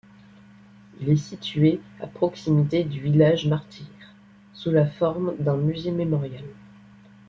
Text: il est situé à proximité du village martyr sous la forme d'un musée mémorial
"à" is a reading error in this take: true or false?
false